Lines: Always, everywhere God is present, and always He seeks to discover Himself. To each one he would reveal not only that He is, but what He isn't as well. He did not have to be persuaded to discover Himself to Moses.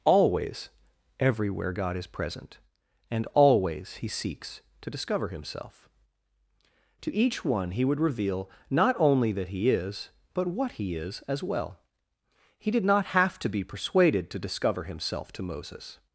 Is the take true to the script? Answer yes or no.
no